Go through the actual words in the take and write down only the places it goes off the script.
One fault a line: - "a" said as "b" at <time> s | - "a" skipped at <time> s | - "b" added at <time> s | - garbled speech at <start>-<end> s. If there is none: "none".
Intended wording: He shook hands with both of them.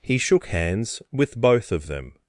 none